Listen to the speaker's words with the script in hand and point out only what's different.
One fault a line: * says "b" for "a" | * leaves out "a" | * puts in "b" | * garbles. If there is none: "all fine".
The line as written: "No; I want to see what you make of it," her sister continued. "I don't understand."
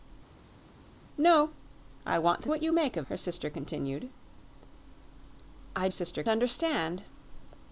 * leaves out "see"
* leaves out "it"
* says "sister" for "don't"